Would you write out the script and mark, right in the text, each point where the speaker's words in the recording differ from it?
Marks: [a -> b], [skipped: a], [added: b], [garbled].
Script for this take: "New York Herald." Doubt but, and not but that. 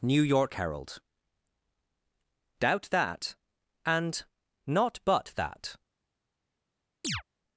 "New York Herald." Doubt [but, -> that] and not but that.